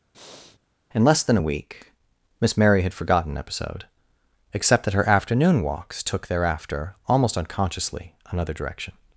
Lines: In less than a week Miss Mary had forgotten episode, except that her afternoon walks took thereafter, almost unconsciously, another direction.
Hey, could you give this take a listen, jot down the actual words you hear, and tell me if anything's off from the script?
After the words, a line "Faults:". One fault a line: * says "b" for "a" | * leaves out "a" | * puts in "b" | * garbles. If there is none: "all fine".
In less than a week Miss Mary had forgotten episode, except that her afternoon walks took thereafter, almost unconsciously, another direction.
Faults:
all fine